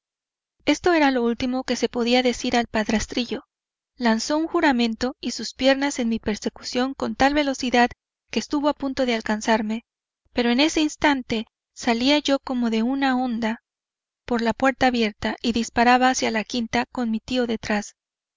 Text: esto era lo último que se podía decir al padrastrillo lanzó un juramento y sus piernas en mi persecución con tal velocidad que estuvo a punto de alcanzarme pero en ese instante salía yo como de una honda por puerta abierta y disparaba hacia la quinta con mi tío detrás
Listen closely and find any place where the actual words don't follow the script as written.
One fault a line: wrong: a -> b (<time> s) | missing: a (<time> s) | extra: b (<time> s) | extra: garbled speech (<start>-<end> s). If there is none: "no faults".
extra: la (14.4 s)